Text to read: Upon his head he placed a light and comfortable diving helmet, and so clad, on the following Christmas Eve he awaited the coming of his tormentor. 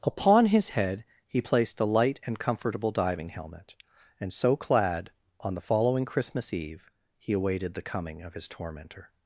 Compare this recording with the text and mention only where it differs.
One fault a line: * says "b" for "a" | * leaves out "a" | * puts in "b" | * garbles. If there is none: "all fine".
all fine